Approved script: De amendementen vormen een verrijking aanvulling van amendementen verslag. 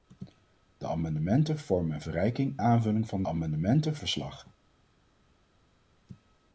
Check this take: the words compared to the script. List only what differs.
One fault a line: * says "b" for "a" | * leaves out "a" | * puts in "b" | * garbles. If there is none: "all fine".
all fine